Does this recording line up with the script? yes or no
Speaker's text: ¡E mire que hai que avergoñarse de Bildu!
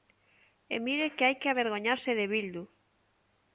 yes